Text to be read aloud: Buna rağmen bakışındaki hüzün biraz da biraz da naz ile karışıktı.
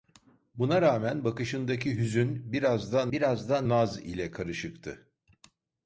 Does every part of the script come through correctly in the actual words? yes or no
yes